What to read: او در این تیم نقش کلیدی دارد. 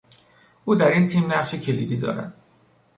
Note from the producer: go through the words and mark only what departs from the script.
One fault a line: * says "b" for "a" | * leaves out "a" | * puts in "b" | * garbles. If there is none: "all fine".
all fine